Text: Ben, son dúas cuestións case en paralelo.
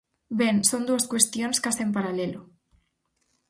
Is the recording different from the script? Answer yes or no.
no